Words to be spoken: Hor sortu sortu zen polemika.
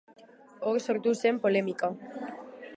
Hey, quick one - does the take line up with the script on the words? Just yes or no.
no